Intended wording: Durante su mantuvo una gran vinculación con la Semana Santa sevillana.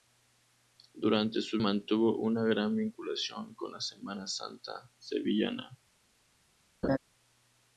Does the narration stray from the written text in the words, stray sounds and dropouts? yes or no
yes